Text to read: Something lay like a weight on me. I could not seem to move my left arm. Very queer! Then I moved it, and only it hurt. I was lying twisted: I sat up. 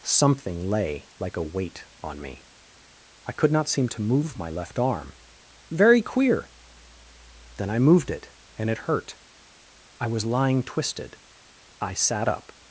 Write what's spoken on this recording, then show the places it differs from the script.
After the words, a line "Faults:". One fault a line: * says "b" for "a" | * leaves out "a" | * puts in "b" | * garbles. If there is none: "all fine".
Something lay like a weight on me. I could not seem to move my left arm. Very queer! Then I moved it, and it hurt. I was lying twisted: I sat up.
Faults:
* leaves out "only"